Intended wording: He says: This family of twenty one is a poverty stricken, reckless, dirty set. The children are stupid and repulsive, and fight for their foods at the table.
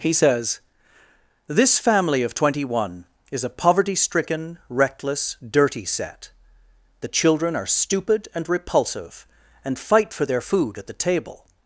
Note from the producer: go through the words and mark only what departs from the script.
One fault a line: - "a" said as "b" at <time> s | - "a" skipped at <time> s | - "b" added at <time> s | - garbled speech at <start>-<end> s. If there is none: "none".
- "foods" said as "food" at 10.4 s